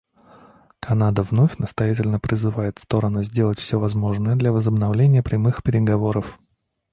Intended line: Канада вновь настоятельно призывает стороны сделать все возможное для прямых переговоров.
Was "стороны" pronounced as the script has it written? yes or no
yes